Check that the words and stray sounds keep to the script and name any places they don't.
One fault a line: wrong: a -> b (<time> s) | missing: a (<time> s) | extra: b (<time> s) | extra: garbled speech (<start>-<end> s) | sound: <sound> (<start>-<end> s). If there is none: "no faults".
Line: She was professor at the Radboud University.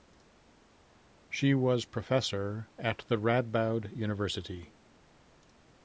no faults